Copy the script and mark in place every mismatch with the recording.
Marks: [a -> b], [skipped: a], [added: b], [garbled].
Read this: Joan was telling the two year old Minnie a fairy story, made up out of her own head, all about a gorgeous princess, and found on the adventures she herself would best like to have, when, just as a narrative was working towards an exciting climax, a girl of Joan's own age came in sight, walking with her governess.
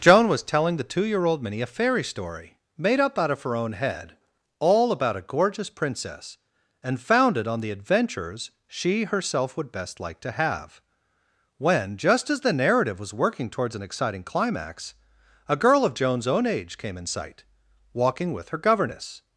Joan was telling the two year old Minnie a fairy story, made up out of her own head, all about a gorgeous princess, and [found -> founded] on the adventures she herself would best like to have, when, just as [a -> the] narrative was working towards an exciting climax, a girl of Joan's own age came in sight, walking with her governess.